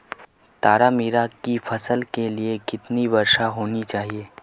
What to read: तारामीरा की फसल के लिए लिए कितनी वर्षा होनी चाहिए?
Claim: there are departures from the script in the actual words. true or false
true